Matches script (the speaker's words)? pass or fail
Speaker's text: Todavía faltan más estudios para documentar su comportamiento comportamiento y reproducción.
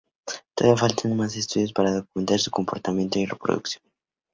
fail